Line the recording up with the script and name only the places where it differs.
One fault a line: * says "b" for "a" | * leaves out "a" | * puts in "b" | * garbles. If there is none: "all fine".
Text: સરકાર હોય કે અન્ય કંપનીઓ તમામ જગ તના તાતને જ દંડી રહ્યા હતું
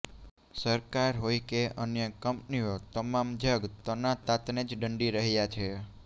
* says "છે" for "હતું"